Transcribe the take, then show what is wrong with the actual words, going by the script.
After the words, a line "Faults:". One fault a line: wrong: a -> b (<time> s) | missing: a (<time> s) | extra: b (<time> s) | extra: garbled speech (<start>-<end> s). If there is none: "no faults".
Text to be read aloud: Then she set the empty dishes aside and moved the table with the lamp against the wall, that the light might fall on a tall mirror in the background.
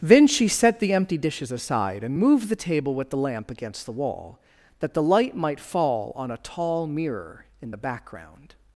Then she set the empty dishes aside and moved the table with the lamp against the wall, that the light might fall on a tall mirror in the background.
Faults:
no faults